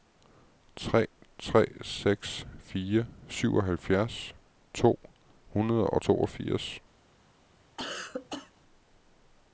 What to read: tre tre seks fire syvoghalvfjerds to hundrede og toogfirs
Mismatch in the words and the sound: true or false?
true